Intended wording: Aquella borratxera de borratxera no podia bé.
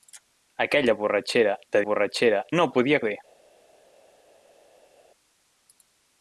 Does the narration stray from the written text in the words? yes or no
no